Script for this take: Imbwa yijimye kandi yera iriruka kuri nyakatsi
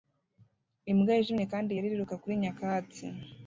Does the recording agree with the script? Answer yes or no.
yes